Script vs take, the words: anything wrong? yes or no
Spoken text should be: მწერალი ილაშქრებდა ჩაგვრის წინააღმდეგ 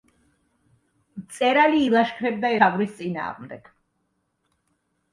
no